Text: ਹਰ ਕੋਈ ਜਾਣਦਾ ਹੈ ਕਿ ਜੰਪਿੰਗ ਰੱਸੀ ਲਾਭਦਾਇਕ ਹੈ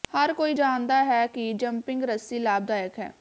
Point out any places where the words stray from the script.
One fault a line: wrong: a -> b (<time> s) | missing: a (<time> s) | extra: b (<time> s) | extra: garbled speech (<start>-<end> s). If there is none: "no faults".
no faults